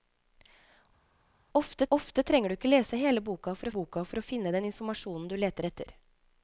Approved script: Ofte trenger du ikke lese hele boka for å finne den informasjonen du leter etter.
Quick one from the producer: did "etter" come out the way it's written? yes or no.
yes